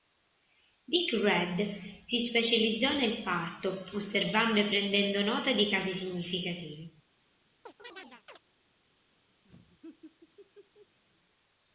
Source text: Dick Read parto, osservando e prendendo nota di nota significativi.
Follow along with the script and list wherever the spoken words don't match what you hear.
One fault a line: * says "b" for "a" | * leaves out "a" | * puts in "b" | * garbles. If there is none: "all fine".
* puts in "si specializzò nel"
* says "casi" for "nota"